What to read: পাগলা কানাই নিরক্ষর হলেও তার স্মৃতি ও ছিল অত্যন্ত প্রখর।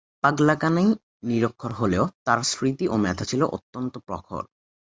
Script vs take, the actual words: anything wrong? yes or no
yes